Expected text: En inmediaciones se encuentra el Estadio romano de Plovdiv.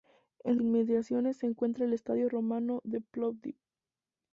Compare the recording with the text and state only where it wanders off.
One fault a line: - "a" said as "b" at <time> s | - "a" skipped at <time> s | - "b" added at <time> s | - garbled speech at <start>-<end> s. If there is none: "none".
none